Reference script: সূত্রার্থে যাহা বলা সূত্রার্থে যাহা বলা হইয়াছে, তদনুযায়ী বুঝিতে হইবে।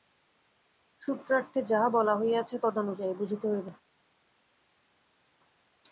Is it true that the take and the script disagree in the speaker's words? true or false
true